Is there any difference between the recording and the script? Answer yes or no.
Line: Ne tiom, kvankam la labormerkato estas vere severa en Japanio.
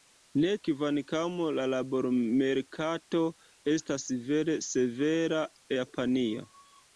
yes